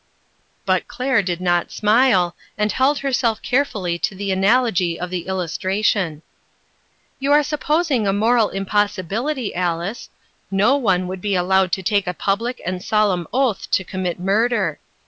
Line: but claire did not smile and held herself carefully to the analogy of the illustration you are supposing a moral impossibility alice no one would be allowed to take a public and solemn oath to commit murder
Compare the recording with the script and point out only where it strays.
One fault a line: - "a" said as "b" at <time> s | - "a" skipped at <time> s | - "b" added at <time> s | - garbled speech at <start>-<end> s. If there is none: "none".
none